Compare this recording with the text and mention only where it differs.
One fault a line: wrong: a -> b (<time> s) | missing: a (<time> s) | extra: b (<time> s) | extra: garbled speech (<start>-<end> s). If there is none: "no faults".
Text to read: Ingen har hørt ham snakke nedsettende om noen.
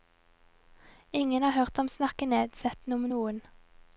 no faults